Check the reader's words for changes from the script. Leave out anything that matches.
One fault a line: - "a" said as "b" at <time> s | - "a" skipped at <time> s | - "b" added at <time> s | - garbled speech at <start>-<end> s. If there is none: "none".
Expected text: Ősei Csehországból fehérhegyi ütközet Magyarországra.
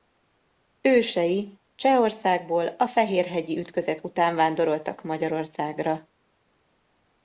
- "a" added at 2.7 s
- "után vándoroltak" added at 4.0 s